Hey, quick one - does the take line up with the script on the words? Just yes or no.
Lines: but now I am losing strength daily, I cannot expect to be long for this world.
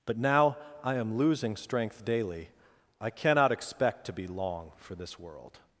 yes